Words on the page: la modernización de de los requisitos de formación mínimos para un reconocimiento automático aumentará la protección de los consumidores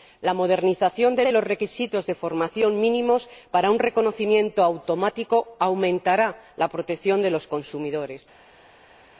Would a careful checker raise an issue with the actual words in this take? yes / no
no